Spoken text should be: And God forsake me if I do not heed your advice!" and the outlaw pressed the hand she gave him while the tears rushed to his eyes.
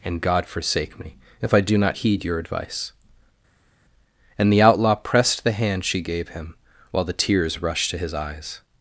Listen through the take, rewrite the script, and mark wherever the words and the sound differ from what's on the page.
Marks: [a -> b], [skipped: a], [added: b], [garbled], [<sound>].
And God forsake me if I do not heed your advice!" and the outlaw pressed the hand she gave him while the tears rushed to his eyes.